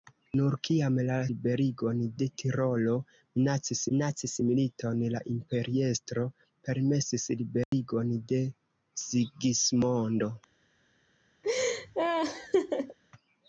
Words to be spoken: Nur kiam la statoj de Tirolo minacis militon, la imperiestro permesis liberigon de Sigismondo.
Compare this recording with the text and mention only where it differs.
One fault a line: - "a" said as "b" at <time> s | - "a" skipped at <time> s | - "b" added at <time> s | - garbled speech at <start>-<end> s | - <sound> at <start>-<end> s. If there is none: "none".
- "statoj" said as "liberigon" at 1.3 s
- "minacis" added at 3.9 s
- dropout at 7.6-7.7 s
- laugh at 11.4-13.0 s